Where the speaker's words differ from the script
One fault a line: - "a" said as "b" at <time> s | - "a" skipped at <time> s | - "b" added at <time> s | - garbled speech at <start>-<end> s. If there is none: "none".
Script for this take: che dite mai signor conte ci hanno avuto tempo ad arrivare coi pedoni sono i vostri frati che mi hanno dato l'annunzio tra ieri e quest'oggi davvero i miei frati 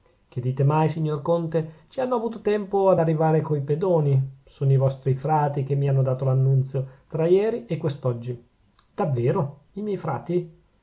none